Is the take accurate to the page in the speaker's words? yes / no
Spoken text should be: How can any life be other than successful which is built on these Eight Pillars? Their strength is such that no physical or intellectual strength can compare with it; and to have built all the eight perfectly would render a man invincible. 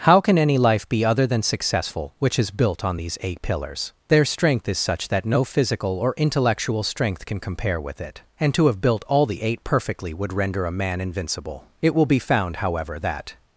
no